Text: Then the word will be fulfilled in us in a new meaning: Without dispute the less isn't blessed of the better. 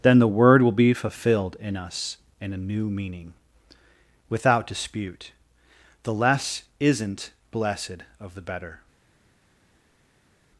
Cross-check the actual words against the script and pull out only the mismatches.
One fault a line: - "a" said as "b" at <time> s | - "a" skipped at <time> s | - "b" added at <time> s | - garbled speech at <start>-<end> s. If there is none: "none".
none